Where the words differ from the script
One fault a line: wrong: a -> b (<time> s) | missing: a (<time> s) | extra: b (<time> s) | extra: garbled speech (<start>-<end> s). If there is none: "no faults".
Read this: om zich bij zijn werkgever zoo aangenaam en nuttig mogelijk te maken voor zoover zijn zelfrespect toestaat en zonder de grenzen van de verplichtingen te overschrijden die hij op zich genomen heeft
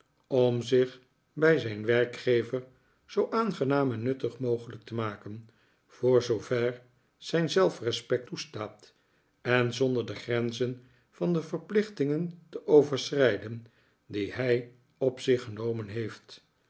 no faults